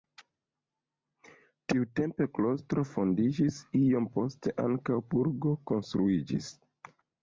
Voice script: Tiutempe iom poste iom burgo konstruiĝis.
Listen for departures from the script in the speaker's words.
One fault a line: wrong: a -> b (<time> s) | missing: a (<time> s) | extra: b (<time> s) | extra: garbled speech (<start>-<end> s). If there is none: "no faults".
extra: klostro fondiĝis (2.4 s)
wrong: iom -> ankaŭ (4.7 s)